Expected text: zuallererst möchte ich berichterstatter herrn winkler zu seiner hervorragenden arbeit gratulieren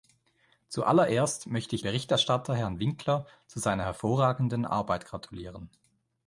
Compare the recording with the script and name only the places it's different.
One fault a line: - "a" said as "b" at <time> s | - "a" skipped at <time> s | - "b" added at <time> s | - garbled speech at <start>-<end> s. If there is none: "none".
none